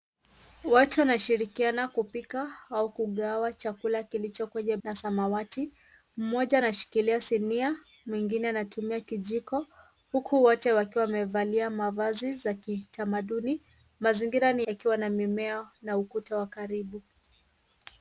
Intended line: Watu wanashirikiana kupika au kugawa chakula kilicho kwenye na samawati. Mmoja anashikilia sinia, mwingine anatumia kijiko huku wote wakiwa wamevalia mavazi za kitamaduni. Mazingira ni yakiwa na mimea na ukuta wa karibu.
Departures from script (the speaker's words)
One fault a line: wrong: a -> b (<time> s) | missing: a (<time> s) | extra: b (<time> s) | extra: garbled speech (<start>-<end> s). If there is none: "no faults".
no faults